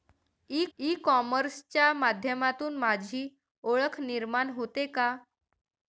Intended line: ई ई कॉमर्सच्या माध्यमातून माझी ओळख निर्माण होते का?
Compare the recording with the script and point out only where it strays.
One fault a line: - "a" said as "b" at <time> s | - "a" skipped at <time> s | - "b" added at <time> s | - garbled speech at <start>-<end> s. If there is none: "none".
none